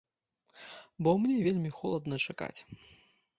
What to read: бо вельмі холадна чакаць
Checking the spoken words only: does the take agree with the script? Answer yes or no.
no